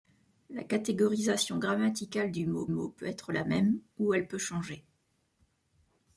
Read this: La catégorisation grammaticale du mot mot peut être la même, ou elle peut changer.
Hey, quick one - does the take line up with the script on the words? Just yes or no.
yes